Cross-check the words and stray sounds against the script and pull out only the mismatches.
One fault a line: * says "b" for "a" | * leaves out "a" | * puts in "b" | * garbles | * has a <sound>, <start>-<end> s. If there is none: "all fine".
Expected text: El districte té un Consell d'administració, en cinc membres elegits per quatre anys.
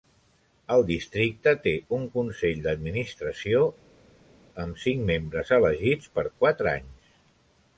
* says "amb" for "en"